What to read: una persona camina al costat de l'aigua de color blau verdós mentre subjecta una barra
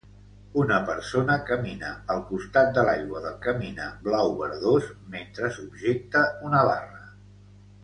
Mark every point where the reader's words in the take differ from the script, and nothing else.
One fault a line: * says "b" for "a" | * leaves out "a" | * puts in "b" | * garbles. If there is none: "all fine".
* says "camina" for "color"